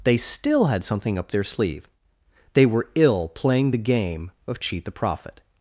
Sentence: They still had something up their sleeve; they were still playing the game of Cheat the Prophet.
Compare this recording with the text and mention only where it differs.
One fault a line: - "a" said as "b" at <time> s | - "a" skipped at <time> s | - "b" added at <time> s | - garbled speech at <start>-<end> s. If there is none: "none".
- "still" said as "ill" at 3.0 s